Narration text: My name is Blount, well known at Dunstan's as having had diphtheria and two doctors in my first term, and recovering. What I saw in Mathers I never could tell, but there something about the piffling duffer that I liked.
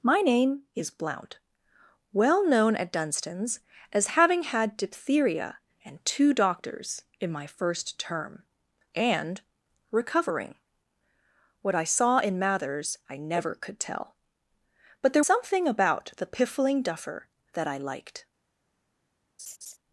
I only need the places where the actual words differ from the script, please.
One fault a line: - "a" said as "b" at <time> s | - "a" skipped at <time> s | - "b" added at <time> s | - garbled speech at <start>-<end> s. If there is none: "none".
none